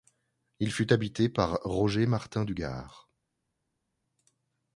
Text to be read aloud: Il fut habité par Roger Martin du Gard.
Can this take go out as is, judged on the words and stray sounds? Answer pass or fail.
pass